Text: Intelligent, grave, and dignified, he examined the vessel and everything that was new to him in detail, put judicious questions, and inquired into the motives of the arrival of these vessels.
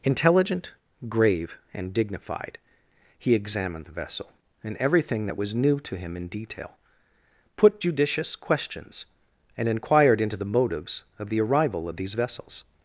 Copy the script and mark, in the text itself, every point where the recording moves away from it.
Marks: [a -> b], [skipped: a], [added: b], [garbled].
Intelligent, grave, and dignified, he examined the vessel and everything that was new to him in detail, put judicious questions, and inquired into the motives of the arrival of these vessels.